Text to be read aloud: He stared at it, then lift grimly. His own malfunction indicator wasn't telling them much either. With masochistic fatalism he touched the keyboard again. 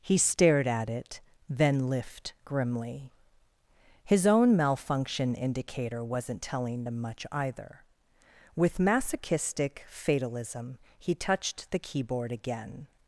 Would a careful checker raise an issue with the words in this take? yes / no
no